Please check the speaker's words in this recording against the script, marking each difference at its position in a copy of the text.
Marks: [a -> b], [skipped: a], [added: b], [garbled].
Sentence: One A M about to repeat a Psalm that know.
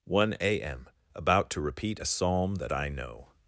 One A M about to repeat a Psalm that [added: I] know.